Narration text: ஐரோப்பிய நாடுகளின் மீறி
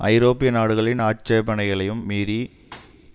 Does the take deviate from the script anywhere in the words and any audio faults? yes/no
yes